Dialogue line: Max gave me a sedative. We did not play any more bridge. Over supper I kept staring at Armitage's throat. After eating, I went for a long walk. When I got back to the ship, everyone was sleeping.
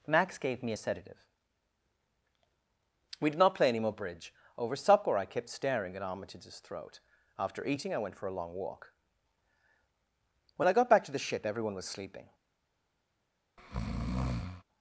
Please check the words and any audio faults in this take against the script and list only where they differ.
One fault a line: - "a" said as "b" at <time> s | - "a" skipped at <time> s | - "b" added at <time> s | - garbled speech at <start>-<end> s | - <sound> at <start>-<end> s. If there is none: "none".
- breath at 13.6-14.6 s